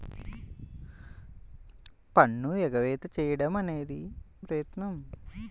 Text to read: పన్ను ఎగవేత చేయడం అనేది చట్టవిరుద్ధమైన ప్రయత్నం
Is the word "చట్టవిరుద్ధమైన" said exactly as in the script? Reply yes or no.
no